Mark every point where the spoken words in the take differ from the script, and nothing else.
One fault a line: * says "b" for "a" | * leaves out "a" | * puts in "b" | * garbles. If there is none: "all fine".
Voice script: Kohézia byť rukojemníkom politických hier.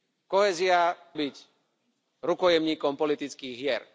all fine